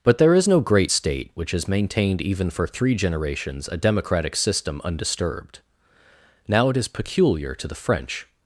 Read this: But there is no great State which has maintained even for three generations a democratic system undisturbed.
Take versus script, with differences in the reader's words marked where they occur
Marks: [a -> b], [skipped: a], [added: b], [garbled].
But there is no great State which has maintained even for three generations a democratic system undisturbed. [added: Now it is peculiar to the French]